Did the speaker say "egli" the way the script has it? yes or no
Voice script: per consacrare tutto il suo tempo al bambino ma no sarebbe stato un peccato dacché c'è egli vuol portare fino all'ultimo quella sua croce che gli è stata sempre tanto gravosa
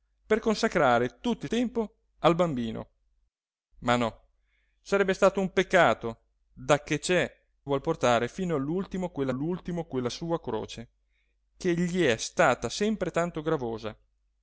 no